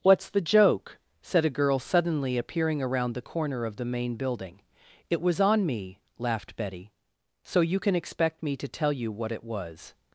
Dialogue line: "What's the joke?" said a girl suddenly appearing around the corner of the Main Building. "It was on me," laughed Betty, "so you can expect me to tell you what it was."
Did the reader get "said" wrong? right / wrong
right